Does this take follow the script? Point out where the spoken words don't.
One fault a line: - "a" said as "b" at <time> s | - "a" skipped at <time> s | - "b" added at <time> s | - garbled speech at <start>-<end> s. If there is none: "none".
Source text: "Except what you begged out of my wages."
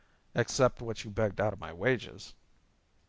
none